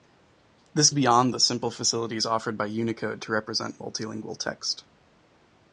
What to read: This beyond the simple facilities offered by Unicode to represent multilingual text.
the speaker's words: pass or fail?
pass